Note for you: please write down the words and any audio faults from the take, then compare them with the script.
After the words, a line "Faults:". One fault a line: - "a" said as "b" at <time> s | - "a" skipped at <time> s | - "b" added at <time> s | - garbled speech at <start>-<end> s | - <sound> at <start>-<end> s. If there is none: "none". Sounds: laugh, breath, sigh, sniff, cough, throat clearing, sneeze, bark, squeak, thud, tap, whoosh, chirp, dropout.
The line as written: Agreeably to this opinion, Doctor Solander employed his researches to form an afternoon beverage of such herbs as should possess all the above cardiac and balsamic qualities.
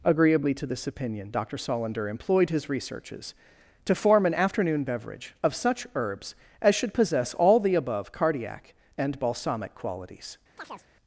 Agreeably to this opinion, Doctor Solander employed his researches to form an afternoon beverage of such herbs as should possess all the above cardiac and balsamic qualities.
Faults:
- chirp at 10.6-10.9 s